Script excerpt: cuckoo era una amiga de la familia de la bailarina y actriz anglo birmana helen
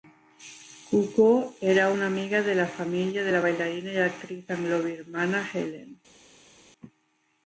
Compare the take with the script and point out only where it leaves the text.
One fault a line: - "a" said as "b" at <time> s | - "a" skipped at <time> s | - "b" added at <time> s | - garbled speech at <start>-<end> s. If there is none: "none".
none